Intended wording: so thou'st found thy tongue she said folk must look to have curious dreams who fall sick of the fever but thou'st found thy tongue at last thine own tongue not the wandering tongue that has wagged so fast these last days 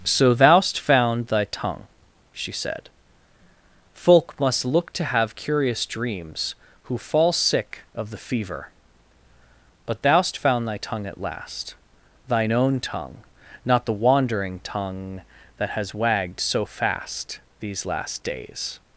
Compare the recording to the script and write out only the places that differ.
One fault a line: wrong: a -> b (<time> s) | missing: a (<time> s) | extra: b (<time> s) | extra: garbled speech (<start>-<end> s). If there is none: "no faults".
no faults